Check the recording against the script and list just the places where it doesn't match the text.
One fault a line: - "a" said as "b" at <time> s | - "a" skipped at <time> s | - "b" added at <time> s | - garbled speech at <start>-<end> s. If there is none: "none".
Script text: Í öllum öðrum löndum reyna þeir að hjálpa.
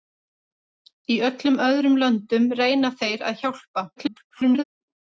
- garbled speech at 4.0-4.6 s